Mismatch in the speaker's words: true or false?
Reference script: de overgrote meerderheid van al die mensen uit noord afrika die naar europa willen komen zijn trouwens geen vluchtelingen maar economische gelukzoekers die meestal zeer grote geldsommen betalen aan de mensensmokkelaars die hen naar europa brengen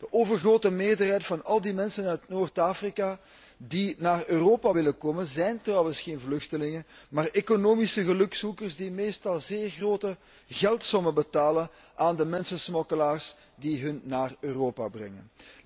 false